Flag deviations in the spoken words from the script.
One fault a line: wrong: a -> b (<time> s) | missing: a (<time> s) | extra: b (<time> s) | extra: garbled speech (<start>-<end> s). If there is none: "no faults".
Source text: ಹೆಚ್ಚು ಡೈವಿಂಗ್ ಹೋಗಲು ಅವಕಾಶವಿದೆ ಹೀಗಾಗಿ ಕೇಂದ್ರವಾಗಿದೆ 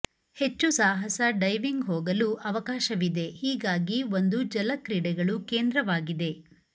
extra: ಸಾಹಸ (0.7 s)
extra: ಒಂದು ಜಲ ಕ್ರೀಡೆಗಳು (4.2 s)